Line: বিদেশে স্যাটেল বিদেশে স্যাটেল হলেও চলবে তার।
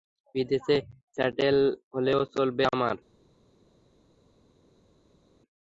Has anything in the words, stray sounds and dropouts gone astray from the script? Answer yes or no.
yes